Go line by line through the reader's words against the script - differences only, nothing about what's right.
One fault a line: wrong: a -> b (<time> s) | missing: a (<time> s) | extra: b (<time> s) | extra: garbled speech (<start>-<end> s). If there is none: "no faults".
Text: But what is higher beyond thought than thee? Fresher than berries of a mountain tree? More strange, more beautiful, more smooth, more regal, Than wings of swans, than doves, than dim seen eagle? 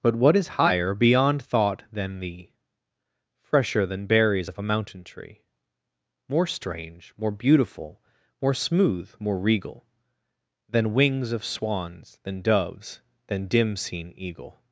no faults